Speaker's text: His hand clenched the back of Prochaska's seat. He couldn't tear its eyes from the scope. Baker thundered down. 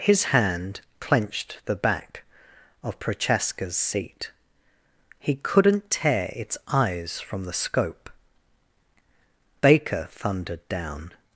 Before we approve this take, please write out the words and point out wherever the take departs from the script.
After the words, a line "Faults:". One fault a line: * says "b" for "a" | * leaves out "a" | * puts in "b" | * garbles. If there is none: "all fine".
His hand clenched the back of Prochaska's seat. He couldn't tear its eyes from the scope. Baker thundered down.
Faults:
all fine